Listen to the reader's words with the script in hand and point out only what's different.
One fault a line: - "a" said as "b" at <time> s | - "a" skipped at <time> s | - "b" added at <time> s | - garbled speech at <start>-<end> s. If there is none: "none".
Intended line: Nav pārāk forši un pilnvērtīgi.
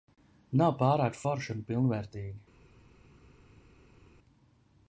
none